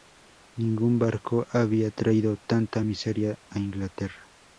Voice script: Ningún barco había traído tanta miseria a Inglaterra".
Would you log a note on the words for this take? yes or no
no